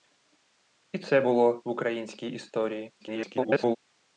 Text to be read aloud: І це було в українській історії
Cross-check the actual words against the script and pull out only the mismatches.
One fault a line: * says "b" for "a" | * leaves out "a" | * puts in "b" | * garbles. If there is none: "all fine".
* garbles